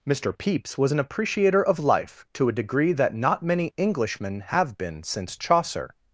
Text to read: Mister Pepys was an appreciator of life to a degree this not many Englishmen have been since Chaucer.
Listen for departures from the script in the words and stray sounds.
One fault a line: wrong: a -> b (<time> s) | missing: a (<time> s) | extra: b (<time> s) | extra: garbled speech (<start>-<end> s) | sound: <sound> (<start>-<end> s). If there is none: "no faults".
wrong: this -> that (2.9 s)